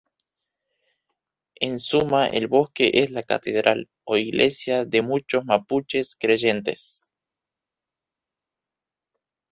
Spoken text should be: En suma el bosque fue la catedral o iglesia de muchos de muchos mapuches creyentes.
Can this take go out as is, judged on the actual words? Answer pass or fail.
fail